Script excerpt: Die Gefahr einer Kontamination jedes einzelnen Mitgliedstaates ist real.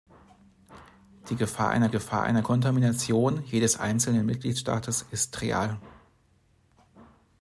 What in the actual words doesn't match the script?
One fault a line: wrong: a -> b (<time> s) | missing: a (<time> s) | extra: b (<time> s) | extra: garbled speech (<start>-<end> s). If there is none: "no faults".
extra: Gefahr einer (1.9 s)